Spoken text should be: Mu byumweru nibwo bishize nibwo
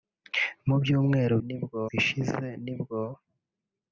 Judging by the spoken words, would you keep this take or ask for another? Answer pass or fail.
pass